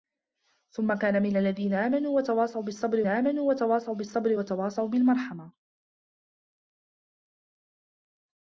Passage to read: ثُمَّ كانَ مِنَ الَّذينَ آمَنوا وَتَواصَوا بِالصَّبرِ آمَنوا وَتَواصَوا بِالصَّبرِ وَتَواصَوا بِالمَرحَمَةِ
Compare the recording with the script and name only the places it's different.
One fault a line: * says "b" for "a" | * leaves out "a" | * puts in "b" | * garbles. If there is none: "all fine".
all fine